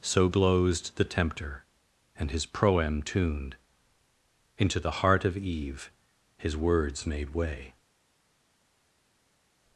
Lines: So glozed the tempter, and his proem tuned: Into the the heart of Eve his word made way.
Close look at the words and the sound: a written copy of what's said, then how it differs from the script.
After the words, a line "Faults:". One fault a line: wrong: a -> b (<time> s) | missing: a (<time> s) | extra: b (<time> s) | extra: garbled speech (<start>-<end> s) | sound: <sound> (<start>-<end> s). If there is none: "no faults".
So glozed the tempter, and his proem tuned: Into the heart of Eve his words made way.
Faults:
missing: the (5.0 s)
wrong: word -> words (6.6 s)